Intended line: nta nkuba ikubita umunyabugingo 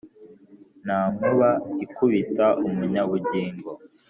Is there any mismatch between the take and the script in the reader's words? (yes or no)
no